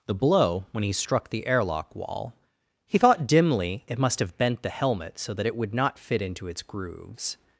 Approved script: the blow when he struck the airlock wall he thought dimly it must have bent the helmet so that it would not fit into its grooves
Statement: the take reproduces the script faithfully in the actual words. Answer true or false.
true